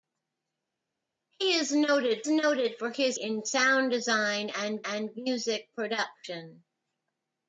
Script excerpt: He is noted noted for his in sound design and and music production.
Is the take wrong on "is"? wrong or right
right